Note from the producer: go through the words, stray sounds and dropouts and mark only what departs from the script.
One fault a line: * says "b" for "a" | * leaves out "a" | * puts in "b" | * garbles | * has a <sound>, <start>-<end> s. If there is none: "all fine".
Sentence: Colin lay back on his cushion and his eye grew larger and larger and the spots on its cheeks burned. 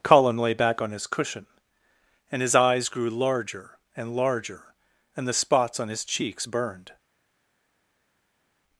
* says "eyes" for "eye"
* says "his" for "its"